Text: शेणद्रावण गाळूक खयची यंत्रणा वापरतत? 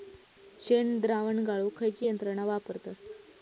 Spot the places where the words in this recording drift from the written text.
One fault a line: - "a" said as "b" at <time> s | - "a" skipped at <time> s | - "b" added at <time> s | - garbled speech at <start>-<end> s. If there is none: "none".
none